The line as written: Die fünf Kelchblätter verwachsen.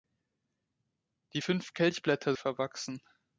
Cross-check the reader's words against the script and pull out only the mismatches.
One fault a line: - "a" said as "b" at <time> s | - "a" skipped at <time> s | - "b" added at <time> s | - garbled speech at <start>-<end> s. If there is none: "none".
none